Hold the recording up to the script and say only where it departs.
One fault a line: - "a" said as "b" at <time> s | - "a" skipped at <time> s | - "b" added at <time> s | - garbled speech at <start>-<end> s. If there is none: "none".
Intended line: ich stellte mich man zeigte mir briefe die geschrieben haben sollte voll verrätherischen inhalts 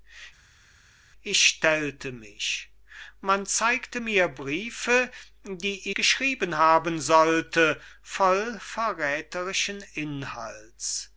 none